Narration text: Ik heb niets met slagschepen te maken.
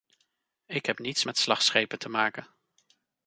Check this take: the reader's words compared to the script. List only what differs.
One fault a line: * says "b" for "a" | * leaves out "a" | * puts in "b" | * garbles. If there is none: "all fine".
all fine